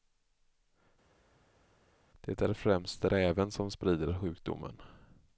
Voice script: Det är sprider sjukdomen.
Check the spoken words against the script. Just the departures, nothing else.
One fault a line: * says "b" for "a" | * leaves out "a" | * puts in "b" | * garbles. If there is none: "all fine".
* puts in "främst räven som"